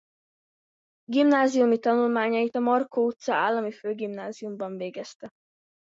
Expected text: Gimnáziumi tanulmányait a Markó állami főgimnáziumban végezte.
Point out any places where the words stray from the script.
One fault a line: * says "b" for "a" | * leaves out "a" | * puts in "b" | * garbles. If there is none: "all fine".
* puts in "utca"